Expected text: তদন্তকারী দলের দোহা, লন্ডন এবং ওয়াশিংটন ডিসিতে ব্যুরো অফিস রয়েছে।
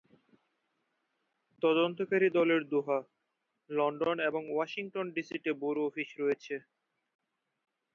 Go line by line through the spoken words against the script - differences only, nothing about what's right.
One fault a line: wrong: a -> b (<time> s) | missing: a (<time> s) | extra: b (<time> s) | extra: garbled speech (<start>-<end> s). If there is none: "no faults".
no faults